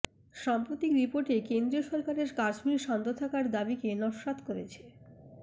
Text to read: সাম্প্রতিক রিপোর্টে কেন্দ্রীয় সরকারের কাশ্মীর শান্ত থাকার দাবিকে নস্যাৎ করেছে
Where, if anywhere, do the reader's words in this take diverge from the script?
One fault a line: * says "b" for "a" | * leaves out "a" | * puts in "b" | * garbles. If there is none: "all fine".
all fine